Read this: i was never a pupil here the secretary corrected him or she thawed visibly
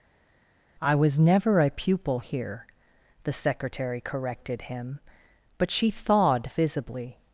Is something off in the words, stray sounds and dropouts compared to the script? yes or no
yes